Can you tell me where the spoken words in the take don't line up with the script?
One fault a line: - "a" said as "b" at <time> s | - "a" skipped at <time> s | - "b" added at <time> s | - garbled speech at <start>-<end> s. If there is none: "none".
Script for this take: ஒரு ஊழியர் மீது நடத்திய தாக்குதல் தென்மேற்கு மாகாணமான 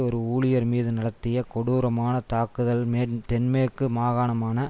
- "கொடூரமான" added at 1.5 s